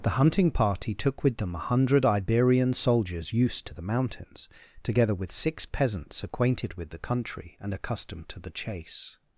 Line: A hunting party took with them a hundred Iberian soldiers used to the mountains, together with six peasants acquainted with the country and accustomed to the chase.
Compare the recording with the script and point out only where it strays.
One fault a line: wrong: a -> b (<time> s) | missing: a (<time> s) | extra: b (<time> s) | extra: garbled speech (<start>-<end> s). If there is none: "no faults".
wrong: A -> The (0.0 s)